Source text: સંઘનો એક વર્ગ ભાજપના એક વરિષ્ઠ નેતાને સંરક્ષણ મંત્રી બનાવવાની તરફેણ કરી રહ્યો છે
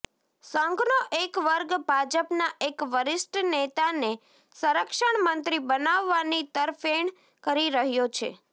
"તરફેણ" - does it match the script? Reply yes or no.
yes